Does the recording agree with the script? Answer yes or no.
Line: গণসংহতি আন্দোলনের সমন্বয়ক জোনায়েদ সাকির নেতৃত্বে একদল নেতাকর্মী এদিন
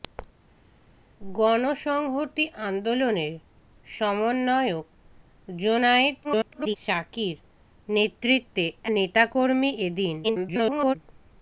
no